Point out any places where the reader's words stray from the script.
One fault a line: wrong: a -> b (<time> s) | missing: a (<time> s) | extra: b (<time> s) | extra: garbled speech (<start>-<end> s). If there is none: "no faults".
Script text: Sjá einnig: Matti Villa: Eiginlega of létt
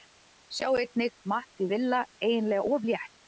no faults